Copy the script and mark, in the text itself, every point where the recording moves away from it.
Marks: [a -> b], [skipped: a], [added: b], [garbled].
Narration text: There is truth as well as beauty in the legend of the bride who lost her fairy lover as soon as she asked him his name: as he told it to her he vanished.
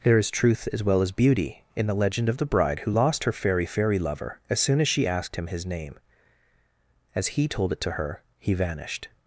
There is truth as well as beauty in the legend of the bride who lost her fairy [added: fairy] lover as soon as she asked him his name: as he told it to her he vanished.